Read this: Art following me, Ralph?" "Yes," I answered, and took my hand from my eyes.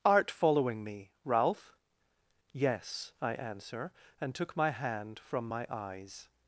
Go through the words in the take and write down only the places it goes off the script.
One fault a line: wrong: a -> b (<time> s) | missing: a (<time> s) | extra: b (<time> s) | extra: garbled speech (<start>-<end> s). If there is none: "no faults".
wrong: answered -> answer (3.4 s)